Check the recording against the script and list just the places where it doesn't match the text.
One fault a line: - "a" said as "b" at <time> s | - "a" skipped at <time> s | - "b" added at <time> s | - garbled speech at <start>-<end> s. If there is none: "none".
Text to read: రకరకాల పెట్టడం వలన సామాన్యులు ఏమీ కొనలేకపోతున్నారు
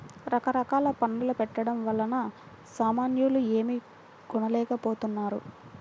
- "పన్నుల" added at 1.0 s